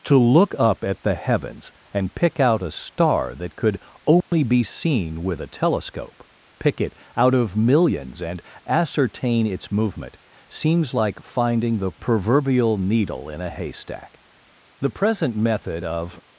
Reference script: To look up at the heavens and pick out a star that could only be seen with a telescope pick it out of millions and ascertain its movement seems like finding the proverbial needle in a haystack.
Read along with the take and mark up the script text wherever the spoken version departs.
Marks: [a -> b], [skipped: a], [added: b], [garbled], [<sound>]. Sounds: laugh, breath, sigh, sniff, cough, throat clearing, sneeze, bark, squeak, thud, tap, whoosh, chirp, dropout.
To look up at the heavens and pick out a star that could only [dropout] be seen with a telescope pick it out of millions and ascertain its movement seems like finding the proverbial needle in a haystack. [added: The present method of]